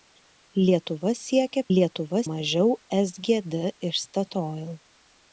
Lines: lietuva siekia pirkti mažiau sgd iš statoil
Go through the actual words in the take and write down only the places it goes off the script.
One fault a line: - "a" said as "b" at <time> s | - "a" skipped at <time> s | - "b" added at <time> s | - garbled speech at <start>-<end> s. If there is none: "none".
- "pirkti" said as "lietuva" at 1.8 s